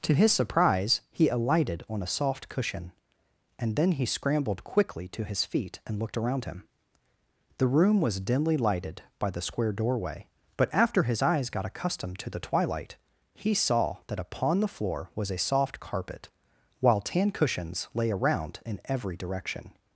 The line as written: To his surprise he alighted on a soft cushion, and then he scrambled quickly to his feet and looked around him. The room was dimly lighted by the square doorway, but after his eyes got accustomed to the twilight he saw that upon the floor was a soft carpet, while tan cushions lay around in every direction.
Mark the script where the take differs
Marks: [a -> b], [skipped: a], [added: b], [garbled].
To his surprise he alighted on a soft cushion, and then he scrambled quickly to his feet and looked around him. The room was dimly lighted by the square doorway, but after his eyes got accustomed to the twilight he saw that upon the floor was a soft carpet, while tan cushions lay around in every direction.